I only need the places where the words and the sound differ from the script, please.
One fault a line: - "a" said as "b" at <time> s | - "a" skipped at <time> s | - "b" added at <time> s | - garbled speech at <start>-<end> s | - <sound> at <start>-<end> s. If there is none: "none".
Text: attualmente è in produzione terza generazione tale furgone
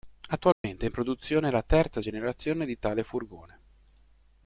- dropout at 0.5-0.6 s
- "la" added at 1.5 s
- "di" added at 2.7 s